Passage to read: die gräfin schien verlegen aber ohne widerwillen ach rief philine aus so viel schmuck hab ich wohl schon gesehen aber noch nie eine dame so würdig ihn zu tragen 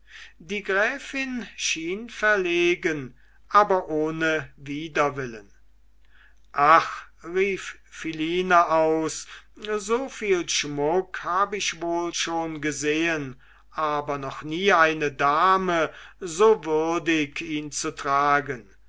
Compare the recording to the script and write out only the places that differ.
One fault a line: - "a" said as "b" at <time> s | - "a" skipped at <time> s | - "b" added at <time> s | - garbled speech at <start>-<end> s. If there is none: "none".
none